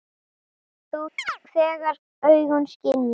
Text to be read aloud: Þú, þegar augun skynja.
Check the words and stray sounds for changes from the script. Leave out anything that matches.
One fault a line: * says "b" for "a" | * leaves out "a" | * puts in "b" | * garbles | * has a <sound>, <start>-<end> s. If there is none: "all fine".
* has a chirp, 1.2-1.4 s